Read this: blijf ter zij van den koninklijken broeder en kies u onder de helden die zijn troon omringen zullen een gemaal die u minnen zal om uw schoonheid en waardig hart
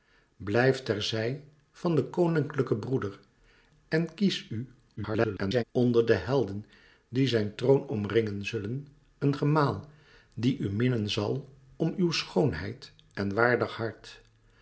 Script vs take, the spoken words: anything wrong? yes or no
yes